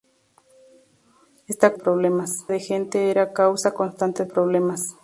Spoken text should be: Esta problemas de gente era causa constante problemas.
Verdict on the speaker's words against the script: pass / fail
pass